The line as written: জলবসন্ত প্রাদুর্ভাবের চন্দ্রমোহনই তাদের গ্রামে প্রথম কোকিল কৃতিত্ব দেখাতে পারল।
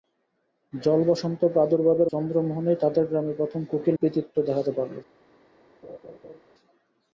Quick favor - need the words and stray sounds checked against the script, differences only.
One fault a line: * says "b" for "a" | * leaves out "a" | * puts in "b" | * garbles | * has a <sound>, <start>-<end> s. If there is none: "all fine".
* has a laugh, 5.8-6.4 s